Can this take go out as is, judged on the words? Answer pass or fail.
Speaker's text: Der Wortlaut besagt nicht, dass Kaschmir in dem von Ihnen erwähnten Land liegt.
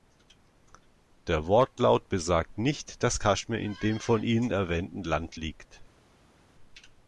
pass